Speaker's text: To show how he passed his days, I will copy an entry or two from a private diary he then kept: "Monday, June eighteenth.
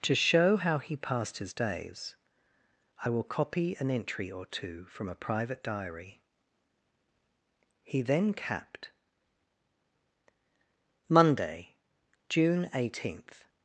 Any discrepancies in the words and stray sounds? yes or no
yes